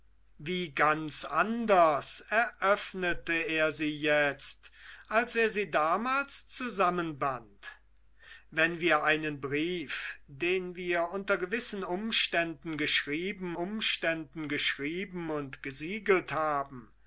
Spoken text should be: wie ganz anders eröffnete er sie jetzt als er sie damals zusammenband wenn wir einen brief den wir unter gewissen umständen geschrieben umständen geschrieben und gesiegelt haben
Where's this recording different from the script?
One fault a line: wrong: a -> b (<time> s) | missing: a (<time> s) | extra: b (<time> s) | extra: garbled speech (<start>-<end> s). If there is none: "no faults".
no faults